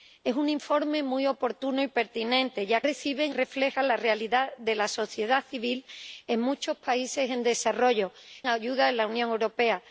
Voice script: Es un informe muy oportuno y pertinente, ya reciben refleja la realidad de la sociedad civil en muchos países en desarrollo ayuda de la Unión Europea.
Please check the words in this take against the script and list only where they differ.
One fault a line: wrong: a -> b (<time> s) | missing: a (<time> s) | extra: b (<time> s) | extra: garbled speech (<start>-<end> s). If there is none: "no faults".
no faults